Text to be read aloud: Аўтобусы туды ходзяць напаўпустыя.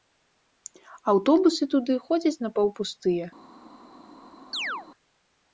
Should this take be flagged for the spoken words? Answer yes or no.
no